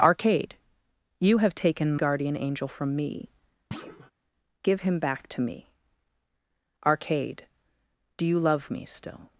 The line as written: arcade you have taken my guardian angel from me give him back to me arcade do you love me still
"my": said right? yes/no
no